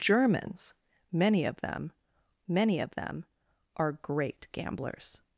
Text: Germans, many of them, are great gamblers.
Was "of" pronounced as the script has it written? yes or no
yes